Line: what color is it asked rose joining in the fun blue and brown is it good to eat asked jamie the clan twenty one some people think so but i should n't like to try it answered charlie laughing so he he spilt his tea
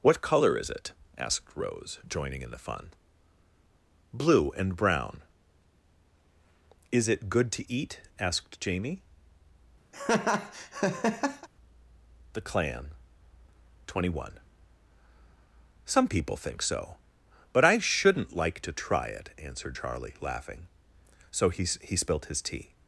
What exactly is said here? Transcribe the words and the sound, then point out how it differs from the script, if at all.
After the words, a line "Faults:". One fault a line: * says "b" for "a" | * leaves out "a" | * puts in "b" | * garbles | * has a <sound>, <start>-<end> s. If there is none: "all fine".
what color is it asked rose joining in the fun blue and brown is it good to eat asked jamie the clan twenty one some people think so but i should n't like to try it answered charlie laughing so he he spilt his tea
Faults:
* has a laugh, 9.9-11.5 s